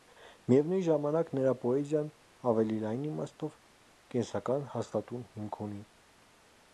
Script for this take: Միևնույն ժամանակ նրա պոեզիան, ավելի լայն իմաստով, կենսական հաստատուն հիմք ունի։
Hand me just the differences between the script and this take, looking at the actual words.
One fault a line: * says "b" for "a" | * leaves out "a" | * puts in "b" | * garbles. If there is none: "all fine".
all fine